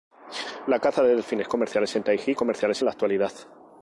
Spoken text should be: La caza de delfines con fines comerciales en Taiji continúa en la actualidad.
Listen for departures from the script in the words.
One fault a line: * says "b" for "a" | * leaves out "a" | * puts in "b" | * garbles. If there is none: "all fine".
* leaves out "con fines"
* says "comerciales" for "continúa"